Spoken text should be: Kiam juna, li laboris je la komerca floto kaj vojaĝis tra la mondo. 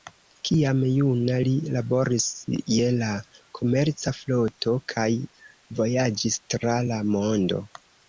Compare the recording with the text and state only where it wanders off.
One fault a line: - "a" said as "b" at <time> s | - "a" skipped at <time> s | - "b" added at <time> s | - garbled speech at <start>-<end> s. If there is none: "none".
none